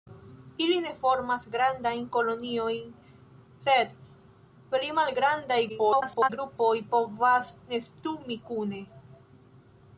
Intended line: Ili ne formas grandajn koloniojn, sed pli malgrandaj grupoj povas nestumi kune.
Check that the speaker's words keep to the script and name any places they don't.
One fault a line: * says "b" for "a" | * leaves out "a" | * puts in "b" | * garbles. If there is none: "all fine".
* garbles